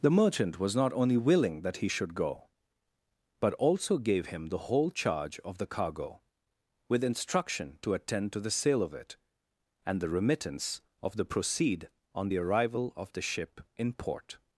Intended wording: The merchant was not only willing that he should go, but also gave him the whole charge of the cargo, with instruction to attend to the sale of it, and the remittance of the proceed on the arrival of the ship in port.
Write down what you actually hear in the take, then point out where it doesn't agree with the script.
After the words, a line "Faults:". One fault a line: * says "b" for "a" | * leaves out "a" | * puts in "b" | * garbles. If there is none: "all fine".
The merchant was not only willing that he should go, but also gave him the whole charge of the cargo, with instruction to attend to the sale of it, and the remittance of the proceed on the arrival of the ship in port.
Faults:
all fine